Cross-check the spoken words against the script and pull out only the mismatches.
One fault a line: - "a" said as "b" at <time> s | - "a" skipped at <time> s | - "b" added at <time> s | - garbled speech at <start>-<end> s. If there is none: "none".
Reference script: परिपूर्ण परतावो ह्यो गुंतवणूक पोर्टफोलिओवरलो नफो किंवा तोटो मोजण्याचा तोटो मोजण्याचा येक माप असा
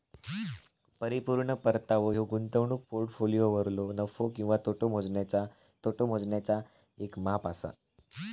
none